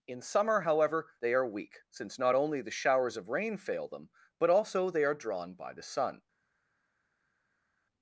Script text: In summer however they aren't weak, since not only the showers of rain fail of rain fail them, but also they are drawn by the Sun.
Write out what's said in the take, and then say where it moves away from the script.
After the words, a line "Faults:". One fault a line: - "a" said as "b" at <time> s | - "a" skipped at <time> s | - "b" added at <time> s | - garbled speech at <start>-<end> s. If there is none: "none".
In summer however they are weak, since not only the showers of rain fail them, but also they are drawn by the Sun.
Faults:
- "aren't" said as "are" at 1.3 s
- "of rain fail" skipped at 3.9 s